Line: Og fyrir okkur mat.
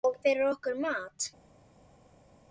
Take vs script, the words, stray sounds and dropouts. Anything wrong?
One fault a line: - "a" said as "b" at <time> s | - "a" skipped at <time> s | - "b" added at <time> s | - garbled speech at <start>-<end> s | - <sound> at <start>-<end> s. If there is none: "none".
none